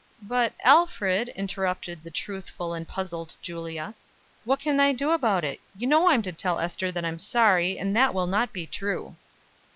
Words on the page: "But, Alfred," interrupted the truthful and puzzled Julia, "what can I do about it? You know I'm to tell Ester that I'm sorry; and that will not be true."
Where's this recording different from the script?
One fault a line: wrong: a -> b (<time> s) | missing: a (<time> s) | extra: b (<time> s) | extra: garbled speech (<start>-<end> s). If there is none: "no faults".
no faults